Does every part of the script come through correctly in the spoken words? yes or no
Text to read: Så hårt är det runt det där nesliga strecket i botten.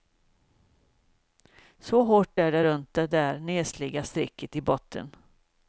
yes